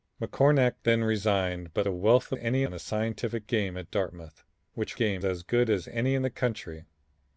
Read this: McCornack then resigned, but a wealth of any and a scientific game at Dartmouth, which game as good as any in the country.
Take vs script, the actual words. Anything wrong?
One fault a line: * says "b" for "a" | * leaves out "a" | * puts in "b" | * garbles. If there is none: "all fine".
all fine